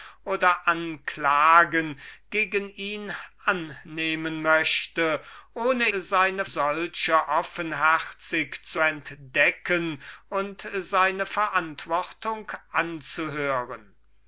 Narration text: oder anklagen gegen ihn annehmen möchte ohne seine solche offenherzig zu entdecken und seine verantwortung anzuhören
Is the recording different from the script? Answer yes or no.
no